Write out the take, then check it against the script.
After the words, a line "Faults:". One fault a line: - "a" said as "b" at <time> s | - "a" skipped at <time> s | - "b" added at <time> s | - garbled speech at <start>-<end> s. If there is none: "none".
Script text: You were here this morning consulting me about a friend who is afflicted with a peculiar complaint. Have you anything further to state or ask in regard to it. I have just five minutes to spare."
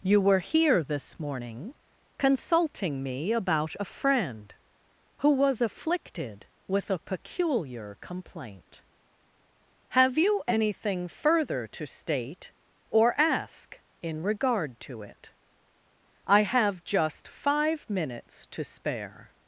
You were here this morning consulting me about a friend who was afflicted with a peculiar complaint. Have you anything further to state or ask in regard to it. I have just five minutes to spare."
Faults:
- "is" said as "was" at 5.3 s